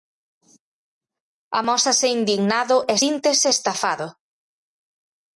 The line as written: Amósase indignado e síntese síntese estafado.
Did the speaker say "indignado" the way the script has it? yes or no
yes